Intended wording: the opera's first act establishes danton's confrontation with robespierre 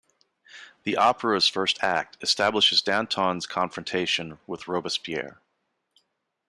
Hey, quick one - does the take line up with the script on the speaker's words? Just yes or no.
yes